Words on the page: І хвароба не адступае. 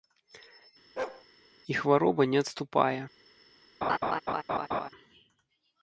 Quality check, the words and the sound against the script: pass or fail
fail